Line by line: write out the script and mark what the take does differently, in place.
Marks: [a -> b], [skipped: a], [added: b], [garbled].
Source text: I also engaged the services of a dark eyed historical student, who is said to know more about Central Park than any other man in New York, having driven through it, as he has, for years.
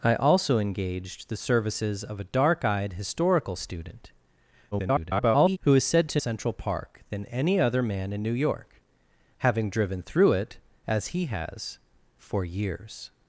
I also engaged the services of a dark eyed historical student, [garbled] who is said to [skipped: know more about] Central Park than any other man in New York, having driven through it, as he has, for years.